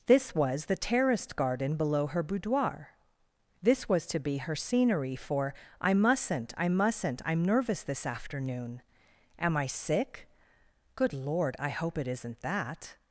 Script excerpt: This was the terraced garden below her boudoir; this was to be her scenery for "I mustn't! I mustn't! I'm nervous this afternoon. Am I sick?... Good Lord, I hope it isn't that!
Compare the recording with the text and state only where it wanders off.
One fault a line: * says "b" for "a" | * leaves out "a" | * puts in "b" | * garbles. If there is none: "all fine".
all fine